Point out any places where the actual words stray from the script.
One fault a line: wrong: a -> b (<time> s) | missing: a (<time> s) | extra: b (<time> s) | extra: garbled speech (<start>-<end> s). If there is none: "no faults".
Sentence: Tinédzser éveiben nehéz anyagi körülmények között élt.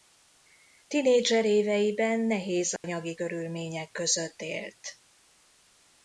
no faults